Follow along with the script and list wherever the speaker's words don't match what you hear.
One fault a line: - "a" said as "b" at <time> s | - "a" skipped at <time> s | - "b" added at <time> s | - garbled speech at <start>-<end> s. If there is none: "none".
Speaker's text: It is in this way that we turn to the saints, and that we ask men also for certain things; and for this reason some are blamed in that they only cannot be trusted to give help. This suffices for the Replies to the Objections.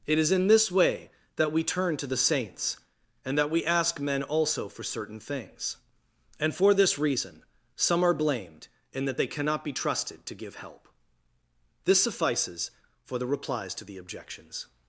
- "only" skipped at 9.3 s